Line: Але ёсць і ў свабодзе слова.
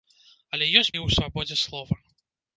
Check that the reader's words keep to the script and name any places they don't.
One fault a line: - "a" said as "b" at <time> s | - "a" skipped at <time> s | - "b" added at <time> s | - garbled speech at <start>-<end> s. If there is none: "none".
none